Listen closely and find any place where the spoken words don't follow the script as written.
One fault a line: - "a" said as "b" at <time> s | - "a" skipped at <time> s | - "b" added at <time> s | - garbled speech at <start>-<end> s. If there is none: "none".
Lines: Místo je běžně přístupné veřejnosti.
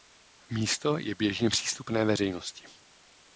none